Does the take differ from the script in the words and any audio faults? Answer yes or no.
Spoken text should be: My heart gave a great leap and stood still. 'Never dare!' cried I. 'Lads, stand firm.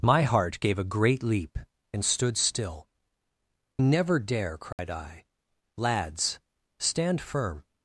yes